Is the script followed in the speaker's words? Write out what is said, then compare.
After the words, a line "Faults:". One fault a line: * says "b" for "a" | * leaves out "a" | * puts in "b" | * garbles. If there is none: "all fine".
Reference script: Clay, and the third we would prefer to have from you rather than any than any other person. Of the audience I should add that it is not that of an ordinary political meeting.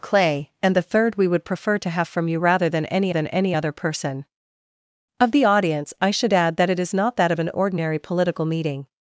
Clay, and the third we would prefer to have from you rather than any than any other person. Of the audience I should add that it is not that of an ordinary political meeting.
Faults:
all fine